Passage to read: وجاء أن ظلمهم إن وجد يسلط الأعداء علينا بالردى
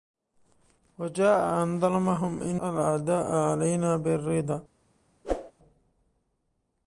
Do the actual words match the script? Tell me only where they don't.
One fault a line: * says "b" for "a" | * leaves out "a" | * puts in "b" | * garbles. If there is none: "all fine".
* leaves out "وجد يسلط"